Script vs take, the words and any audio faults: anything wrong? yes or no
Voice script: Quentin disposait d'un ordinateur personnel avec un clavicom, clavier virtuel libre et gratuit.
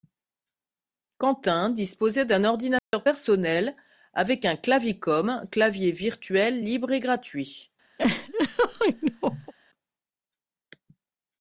yes